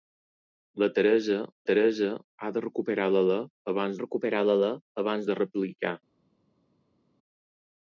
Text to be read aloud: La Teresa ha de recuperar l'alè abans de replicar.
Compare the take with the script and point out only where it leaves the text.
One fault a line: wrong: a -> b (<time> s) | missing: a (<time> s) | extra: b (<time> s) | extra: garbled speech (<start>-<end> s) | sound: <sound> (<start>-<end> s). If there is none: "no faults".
extra: Teresa (1.7 s)
extra: recuperar l'alè abans (4.0 s)